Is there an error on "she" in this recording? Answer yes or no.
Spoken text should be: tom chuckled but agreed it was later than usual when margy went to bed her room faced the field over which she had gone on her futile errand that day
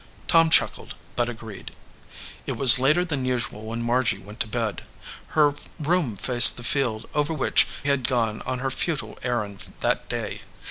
yes